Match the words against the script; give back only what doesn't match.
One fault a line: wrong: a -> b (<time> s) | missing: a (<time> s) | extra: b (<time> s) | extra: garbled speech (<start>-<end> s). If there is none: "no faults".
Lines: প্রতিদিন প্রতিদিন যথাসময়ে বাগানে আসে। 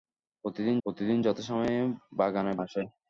no faults